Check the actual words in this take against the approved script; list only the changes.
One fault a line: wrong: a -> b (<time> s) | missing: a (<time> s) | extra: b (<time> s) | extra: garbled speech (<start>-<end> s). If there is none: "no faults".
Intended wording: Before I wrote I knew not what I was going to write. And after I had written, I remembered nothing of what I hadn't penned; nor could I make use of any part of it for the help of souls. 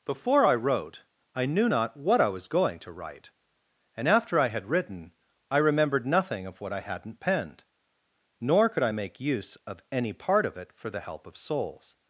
no faults